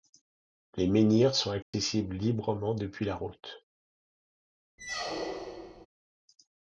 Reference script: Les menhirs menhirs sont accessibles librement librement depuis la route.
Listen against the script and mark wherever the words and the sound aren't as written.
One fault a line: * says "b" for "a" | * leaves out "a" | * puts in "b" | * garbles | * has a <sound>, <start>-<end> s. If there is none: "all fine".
* leaves out "menhirs"
* has a dropout, 1.6-1.7 s
* leaves out "librement"
* has a squeak, 4.8-5.9 s